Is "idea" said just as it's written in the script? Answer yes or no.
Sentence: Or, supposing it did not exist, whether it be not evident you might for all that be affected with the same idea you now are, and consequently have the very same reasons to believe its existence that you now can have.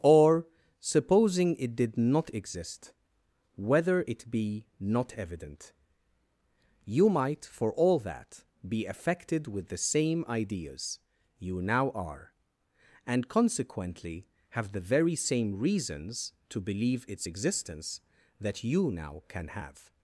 no